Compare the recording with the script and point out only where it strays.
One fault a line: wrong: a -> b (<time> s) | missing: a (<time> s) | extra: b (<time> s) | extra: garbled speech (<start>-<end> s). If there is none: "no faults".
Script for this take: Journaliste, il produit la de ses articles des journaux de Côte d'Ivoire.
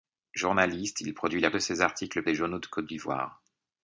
no faults